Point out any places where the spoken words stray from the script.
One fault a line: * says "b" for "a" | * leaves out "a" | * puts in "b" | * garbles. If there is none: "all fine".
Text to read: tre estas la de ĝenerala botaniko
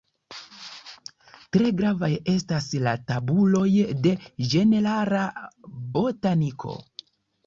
* puts in "gravaj"
* puts in "tabuloj"